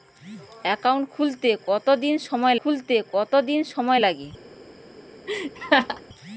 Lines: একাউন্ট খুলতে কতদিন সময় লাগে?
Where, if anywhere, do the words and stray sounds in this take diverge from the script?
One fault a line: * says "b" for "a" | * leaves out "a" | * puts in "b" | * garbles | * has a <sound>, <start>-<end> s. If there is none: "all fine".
* puts in "খুলতে কতদিন সময়"
* has a laugh, 5.3-6.0 s